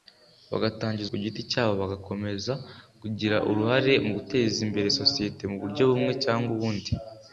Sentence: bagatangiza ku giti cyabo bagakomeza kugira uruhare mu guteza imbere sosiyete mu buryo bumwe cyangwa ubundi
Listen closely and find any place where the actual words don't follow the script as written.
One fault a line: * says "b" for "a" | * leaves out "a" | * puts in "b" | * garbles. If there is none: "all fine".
all fine